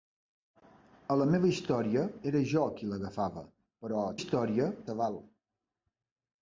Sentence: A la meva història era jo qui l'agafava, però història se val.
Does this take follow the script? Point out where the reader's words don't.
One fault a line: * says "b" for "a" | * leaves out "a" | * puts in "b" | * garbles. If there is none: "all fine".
all fine